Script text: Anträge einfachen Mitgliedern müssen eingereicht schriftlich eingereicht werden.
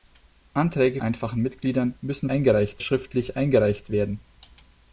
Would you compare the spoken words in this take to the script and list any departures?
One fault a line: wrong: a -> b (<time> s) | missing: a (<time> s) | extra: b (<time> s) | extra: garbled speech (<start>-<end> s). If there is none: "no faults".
no faults